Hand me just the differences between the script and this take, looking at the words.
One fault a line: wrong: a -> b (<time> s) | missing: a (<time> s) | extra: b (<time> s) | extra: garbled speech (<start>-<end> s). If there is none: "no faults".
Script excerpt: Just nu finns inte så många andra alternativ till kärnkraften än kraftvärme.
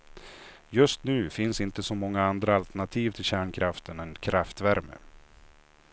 no faults